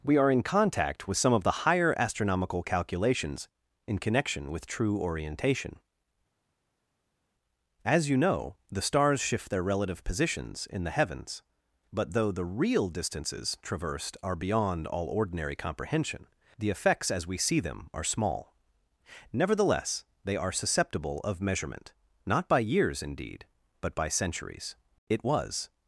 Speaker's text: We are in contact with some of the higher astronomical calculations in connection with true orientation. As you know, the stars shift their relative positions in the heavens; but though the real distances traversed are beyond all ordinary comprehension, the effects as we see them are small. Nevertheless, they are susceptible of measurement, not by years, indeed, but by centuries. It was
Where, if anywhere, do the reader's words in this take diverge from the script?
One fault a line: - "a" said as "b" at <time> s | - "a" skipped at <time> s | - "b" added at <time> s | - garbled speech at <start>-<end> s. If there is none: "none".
none